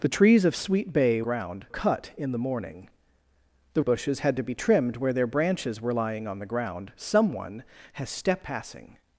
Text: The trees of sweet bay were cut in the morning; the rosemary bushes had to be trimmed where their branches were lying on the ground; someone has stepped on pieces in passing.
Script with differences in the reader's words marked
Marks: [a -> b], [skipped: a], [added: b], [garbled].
The trees of sweet bay [were -> ground] cut in the morning; the [skipped: rosemary] bushes had to be trimmed where their branches were lying on the ground; someone has stepped [skipped: on pieces in] passing.